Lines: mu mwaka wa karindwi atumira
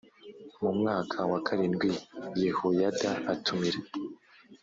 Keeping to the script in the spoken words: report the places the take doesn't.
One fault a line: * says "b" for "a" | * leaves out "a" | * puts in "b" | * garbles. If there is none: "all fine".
* puts in "yehoyada"